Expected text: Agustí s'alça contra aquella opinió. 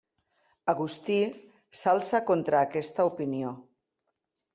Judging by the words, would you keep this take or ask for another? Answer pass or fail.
fail